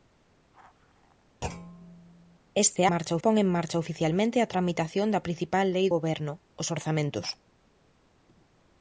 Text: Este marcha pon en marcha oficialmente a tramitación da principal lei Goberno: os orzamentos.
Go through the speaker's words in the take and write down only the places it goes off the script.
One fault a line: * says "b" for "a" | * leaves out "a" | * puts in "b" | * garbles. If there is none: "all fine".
all fine